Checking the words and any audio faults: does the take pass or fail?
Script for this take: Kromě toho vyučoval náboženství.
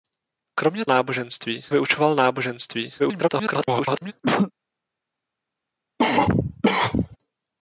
fail